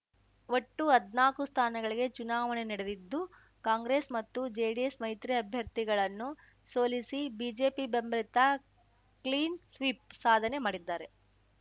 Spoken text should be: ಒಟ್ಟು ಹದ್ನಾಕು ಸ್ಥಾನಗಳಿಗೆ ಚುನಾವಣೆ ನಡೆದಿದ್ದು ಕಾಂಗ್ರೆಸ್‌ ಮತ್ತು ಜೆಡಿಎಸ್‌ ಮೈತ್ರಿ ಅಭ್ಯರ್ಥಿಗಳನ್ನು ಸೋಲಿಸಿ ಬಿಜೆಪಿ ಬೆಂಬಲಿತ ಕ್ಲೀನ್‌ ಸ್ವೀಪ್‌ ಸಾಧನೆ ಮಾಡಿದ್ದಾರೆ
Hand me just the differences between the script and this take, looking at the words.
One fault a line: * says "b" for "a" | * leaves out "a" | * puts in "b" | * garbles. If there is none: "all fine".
all fine